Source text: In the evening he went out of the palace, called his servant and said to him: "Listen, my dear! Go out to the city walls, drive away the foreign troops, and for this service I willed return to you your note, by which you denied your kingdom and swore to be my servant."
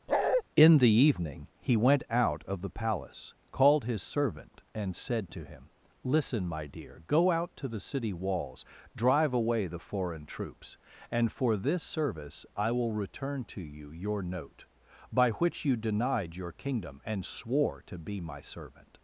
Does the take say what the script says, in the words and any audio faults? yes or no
no